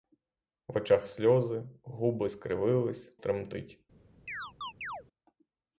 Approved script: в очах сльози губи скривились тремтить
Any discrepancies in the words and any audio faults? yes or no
yes